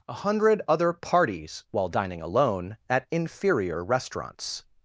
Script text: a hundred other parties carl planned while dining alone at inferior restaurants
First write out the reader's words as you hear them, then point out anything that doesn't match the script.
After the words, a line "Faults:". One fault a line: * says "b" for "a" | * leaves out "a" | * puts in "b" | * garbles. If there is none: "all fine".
a hundred other parties while dining alone at inferior restaurants
Faults:
* leaves out "carl planned"